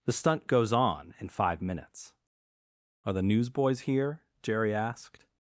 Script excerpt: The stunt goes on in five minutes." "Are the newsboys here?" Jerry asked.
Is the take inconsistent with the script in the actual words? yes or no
no